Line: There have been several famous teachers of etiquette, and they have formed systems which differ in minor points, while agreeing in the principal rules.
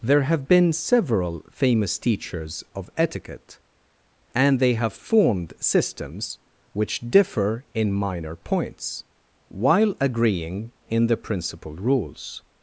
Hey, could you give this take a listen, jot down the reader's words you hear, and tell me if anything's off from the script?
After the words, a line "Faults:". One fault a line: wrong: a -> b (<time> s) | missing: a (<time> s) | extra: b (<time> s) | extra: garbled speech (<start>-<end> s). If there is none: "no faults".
There have been several famous teachers of etiquette, and they have formed systems which differ in minor points, while agreeing in the principal rules.
Faults:
no faults